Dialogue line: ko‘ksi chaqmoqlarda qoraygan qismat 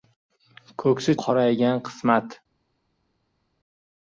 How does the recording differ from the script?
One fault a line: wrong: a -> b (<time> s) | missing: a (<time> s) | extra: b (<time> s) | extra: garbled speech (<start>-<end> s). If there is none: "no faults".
missing: chaqmoqlarda (1.1 s)